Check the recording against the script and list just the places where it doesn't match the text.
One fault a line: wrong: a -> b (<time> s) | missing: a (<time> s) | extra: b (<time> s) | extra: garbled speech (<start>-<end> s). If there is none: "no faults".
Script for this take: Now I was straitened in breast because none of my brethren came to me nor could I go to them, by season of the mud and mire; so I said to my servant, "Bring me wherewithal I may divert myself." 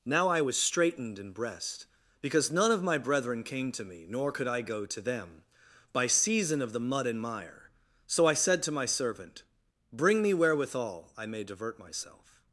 no faults